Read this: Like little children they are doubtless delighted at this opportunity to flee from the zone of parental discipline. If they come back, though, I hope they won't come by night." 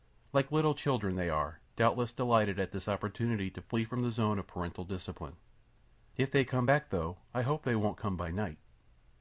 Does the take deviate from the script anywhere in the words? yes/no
no